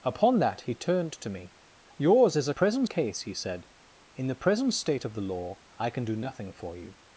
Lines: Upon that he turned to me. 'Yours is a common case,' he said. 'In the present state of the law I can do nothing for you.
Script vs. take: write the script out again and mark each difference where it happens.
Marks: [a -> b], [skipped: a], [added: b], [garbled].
Upon that he turned to me. 'Yours is a [common -> present] case,' he said. 'In the present state of the law I can do nothing for you.